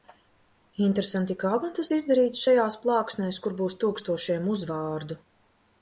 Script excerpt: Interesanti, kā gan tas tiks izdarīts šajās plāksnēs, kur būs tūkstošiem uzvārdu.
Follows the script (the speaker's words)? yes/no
no